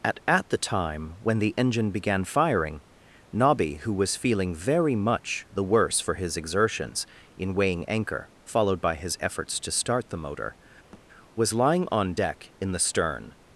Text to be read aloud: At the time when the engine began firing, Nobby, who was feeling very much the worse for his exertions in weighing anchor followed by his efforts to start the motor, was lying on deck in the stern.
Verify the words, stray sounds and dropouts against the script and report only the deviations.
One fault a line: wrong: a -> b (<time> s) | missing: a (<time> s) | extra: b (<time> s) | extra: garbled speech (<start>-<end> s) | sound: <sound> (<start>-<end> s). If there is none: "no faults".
extra: at (0.3 s)
sound: thud (10.9-11.0 s)